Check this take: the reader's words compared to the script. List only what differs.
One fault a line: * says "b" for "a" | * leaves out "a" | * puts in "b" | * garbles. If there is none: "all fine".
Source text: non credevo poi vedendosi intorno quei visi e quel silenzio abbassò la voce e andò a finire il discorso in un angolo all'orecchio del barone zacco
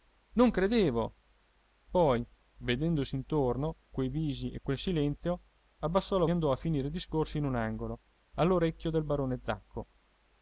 * leaves out "voce e"